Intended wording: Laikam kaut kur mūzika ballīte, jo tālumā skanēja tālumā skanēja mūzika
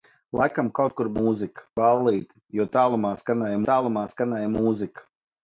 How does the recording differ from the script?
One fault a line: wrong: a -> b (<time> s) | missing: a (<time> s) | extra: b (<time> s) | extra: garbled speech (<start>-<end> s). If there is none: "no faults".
no faults